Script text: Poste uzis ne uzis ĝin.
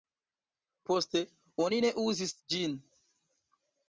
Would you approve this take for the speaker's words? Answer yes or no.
no